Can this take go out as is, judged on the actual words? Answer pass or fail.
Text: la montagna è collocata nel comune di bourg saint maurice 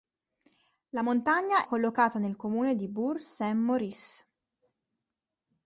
fail